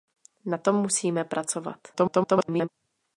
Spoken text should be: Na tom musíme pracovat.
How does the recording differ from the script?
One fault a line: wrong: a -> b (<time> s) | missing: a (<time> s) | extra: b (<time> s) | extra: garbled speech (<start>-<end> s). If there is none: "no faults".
extra: garbled speech (1.9-2.7 s)